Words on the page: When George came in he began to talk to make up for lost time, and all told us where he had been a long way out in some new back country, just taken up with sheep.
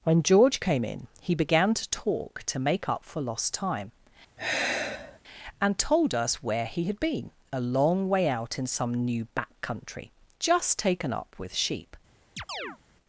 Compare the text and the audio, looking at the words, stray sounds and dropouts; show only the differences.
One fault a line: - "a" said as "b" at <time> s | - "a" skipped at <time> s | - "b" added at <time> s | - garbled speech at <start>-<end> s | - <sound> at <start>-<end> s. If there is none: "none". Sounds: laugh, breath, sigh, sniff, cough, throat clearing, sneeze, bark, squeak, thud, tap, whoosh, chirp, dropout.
- sigh at 4.4-5.2 s
- "all" skipped at 5.8 s
- chirp at 12.4-12.8 s